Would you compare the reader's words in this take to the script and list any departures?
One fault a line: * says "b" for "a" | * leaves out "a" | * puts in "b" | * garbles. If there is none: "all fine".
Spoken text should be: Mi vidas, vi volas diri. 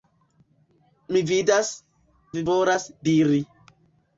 all fine